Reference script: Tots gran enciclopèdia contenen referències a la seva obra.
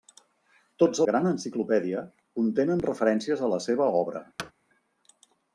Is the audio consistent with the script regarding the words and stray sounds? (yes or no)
no